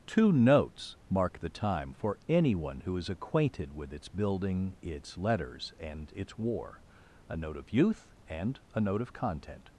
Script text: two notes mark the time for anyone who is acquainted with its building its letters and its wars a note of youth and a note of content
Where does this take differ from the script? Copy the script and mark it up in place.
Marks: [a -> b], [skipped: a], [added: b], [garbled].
two notes mark the time for anyone who is acquainted with its building its letters and its [wars -> war] a note of youth and a note of content